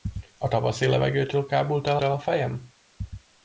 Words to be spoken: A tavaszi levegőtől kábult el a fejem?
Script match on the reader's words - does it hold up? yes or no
no